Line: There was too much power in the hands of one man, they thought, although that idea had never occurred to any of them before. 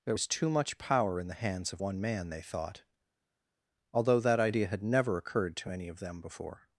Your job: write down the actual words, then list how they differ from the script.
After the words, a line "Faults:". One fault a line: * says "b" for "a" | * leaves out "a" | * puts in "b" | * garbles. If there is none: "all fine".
There was too much power in the hands of one man, they thought, although that idea had never occurred to any of them before.
Faults:
all fine